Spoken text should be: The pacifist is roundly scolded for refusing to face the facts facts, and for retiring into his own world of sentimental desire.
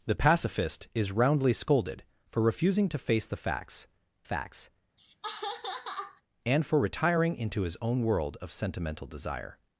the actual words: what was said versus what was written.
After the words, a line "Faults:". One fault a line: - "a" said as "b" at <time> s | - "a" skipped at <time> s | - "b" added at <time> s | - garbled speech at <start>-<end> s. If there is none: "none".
The pacifist is roundly scolded for refusing to face the facts facts, and for retiring into his own world of sentimental desire.
Faults:
none